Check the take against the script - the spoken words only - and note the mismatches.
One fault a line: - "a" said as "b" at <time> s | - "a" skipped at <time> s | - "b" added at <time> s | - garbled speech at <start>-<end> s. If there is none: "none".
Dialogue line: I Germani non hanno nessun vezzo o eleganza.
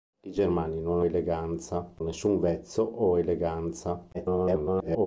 - "hanno" said as "eleganza" at 1.0 s
- garbled speech at 4.1-5.1 s